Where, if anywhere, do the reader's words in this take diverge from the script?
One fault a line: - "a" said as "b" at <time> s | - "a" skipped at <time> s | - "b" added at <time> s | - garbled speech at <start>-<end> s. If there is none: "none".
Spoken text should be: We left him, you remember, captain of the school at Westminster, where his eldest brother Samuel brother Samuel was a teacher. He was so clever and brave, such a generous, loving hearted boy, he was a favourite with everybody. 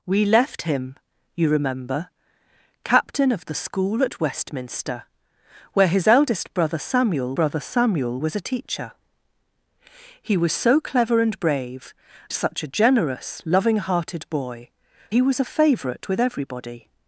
none